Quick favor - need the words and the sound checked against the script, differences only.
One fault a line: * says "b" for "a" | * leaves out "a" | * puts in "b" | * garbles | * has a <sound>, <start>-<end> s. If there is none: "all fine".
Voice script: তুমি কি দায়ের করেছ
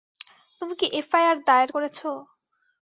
* puts in "এফআইআর"